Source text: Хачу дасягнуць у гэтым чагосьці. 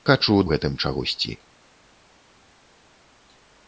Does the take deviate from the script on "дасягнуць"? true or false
true